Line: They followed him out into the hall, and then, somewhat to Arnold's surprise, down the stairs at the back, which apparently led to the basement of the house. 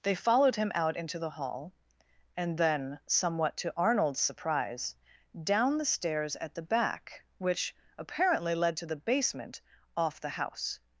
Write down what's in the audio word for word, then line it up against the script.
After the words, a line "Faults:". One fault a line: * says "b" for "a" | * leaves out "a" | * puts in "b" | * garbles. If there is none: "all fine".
They followed him out into the hall, and then, somewhat to Arnold's surprise, down the stairs at the back, which apparently led to the basement off the house.
Faults:
* says "off" for "of"